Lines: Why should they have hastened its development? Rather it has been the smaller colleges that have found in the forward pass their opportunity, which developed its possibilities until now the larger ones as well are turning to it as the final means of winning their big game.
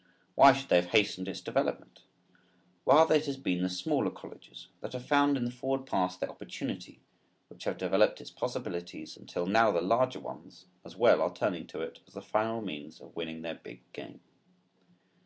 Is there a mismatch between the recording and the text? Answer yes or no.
yes